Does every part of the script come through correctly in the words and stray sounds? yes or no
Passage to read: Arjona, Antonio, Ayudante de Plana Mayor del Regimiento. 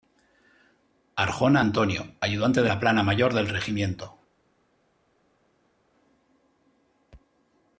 no